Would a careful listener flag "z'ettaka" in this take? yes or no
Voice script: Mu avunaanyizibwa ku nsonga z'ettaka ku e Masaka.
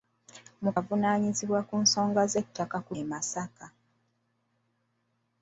no